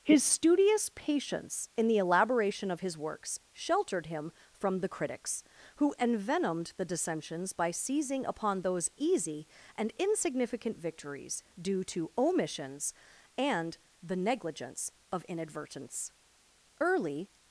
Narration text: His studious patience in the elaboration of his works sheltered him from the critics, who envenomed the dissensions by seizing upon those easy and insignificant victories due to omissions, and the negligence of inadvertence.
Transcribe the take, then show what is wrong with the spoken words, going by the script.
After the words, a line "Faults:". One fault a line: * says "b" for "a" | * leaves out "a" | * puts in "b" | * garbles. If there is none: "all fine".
His studious patience in the elaboration of his works sheltered him from the critics, who envenomed the dissensions by seizing upon those easy and insignificant victories due to omissions, and the negligence of inadvertence. Early
Faults:
* puts in "Early"